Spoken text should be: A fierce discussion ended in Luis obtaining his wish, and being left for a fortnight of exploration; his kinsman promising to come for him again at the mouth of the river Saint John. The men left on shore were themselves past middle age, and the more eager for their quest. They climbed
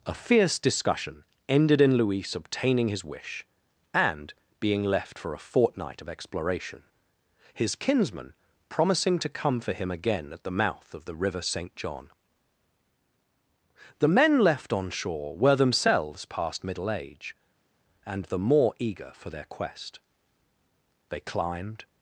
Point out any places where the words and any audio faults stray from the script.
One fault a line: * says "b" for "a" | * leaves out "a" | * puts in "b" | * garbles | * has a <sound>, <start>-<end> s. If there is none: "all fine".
all fine